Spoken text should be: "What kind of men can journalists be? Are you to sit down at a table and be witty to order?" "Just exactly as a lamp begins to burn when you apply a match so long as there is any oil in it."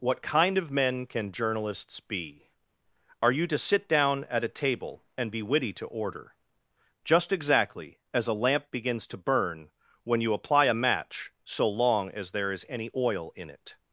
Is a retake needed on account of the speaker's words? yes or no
no